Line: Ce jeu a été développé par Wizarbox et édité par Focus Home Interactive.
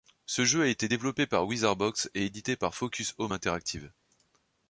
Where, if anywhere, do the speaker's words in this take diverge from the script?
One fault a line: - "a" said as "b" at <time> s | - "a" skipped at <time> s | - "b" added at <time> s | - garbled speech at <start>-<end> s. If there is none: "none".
none